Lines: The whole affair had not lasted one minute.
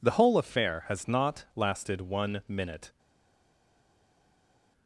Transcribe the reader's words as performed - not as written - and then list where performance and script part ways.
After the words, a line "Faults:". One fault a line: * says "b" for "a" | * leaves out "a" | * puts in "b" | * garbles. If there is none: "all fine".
The whole affair has not lasted one minute.
Faults:
* says "has" for "had"